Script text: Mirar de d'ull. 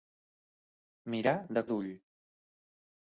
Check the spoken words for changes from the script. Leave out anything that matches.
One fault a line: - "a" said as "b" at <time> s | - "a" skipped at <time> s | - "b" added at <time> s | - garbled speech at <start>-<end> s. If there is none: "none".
none